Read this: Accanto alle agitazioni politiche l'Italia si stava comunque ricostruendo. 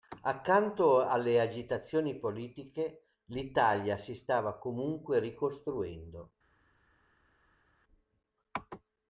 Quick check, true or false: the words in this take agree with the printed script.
true